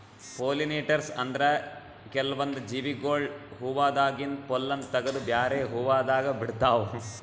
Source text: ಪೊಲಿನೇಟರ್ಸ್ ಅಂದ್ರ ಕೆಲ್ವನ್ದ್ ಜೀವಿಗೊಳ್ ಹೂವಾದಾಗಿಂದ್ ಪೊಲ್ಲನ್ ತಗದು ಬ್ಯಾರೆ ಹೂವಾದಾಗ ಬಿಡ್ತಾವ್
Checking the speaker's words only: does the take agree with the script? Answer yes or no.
yes